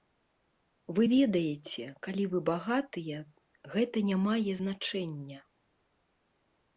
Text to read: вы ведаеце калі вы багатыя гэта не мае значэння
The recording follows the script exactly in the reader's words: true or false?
true